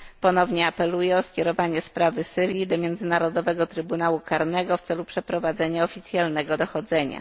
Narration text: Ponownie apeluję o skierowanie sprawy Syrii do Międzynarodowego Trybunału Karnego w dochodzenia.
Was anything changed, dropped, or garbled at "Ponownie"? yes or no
no